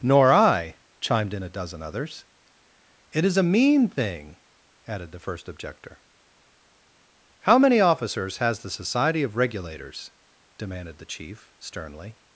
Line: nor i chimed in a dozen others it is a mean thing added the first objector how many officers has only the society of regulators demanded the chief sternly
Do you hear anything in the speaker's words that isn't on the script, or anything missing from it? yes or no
yes